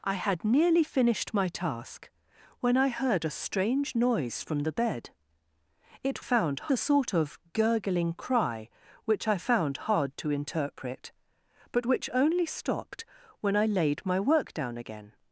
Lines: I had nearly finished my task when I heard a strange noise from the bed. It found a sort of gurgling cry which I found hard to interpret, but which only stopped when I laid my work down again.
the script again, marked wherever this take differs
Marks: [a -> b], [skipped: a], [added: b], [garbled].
I had nearly finished my task when I heard a strange noise from the bed. It found a sort of gurgling cry which I found hard to interpret, but which only stopped when I laid my work down again.